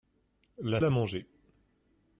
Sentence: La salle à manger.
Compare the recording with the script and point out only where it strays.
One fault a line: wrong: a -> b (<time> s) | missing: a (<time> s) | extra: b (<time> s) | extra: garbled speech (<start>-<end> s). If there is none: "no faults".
missing: salle (0.8 s)